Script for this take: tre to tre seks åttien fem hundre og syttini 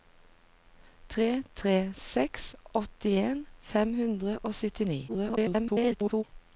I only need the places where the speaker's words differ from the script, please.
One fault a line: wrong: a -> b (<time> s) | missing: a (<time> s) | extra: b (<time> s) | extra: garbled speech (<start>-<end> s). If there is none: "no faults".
missing: to (1.4 s)
extra: garbled speech (5.1-6.2 s)